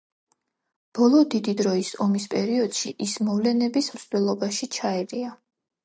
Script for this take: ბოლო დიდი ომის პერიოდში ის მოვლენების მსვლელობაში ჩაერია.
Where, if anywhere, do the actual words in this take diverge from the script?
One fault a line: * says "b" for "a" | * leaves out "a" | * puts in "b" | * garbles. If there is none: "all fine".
* puts in "დროის"